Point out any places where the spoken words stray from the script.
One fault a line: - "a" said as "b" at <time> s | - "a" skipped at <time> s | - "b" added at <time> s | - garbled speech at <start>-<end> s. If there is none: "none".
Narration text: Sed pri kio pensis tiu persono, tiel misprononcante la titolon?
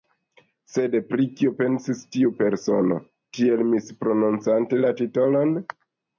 none